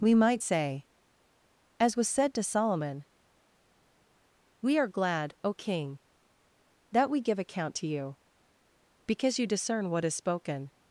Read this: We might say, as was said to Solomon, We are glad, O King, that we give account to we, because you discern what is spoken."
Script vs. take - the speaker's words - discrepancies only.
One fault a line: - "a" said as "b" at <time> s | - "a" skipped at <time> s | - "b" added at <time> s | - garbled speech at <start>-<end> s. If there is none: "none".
- "we" said as "you" at 7.9 s